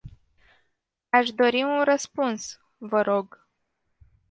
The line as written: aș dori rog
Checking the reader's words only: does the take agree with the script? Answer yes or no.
no